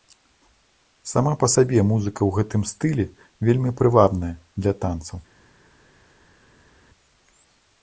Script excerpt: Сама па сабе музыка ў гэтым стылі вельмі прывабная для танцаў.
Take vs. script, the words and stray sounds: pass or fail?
pass